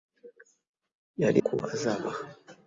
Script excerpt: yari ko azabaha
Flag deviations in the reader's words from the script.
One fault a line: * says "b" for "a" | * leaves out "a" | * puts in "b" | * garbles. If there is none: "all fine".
all fine